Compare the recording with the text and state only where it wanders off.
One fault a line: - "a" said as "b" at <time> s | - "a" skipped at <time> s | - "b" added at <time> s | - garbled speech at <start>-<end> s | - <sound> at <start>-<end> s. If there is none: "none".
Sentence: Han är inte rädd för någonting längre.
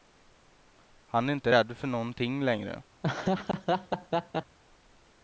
- laugh at 3.0-4.6 s